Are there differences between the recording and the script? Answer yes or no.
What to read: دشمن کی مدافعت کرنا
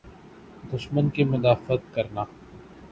no